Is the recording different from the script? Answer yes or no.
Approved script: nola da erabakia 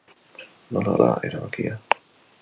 no